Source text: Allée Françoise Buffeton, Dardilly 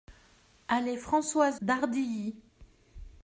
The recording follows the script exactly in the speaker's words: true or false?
false